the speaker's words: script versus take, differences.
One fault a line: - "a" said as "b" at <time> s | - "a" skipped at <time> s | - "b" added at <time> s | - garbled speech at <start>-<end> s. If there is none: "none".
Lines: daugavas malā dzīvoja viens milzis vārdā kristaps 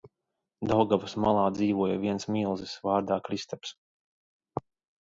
none